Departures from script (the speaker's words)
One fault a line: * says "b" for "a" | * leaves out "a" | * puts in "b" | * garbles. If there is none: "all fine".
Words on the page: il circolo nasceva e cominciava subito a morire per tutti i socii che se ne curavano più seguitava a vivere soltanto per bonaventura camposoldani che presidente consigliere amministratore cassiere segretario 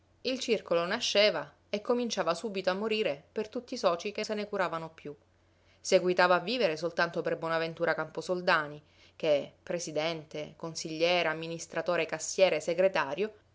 all fine